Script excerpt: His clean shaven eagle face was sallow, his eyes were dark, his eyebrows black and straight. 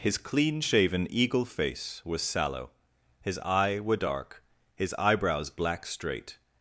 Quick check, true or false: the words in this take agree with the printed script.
false